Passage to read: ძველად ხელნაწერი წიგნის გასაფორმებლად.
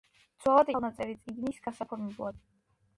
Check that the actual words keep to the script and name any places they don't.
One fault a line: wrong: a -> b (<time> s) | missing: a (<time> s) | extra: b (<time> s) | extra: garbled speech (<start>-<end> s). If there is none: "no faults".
no faults